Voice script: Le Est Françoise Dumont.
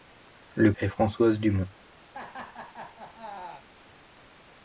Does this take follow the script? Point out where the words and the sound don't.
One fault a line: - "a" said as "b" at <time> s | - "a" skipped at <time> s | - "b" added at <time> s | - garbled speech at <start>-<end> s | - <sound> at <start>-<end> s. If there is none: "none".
- laugh at 2.1-3.6 s